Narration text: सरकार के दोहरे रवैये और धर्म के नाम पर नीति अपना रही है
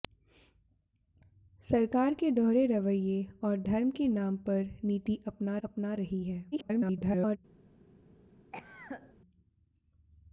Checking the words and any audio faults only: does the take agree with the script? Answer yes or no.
no